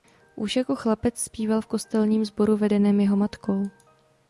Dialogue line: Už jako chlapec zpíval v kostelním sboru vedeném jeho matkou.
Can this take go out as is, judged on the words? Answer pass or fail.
pass